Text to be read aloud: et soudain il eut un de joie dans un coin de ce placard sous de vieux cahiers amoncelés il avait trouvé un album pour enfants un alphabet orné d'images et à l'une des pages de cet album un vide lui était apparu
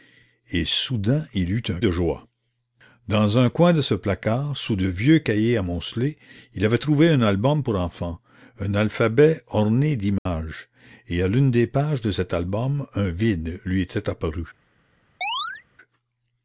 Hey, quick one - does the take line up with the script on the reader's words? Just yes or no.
yes